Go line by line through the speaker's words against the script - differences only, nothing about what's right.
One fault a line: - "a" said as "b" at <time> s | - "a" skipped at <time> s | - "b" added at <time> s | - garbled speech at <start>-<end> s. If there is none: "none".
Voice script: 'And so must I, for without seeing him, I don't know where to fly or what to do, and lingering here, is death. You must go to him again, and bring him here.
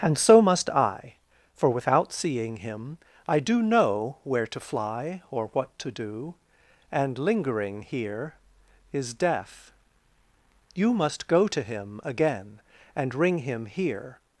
- "don't" said as "do" at 3.4 s
- "bring" said as "ring" at 13.1 s